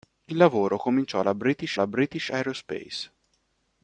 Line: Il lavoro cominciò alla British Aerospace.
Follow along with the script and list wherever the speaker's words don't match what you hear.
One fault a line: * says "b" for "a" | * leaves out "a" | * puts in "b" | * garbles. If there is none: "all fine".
* puts in "alla British"